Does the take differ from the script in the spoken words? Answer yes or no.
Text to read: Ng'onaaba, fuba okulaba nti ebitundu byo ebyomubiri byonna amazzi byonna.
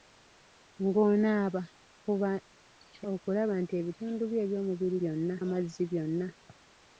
no